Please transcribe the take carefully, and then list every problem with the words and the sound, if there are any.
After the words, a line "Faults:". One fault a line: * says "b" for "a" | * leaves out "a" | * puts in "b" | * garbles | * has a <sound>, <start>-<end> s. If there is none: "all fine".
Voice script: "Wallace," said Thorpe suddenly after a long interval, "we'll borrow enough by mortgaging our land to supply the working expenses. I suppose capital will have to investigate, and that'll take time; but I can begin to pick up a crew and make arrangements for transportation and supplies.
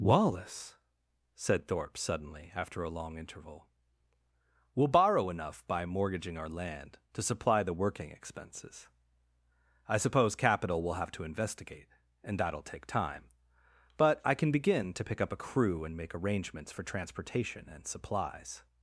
"Wallace," said Thorpe suddenly after a long interval, "we'll borrow enough by mortgaging our land to supply the working expenses. I suppose capital will have to investigate, and that'll take time; but I can begin to pick up a crew and make arrangements for transportation and supplies.
Faults:
all fine